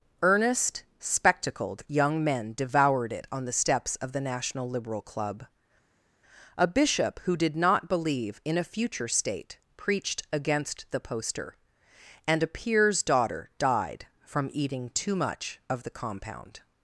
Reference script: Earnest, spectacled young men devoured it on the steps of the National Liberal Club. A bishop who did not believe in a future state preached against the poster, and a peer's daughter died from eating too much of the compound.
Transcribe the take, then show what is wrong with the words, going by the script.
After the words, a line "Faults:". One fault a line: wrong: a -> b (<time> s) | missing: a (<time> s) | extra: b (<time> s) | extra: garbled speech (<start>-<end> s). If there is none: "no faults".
Earnest, spectacled young men devoured it on the steps of the National Liberal Club. A bishop who did not believe in a future state preached against the poster, and a peer's daughter died from eating too much of the compound.
Faults:
no faults